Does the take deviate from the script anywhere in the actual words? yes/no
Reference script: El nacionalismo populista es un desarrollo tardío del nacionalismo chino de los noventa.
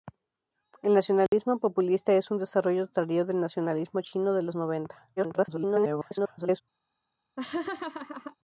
yes